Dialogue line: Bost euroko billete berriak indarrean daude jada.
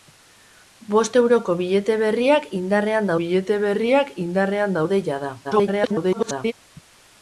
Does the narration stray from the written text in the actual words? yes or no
yes